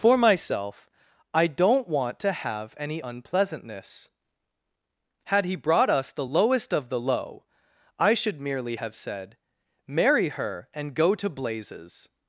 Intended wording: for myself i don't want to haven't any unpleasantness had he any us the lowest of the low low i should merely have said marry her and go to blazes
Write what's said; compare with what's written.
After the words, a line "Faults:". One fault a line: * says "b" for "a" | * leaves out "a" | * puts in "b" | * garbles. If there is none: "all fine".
for myself i don't want to have any unpleasantness had he brought us the lowest of the low i should merely have said marry her and go to blazes
Faults:
* says "have" for "haven't"
* says "brought" for "any"
* leaves out "low"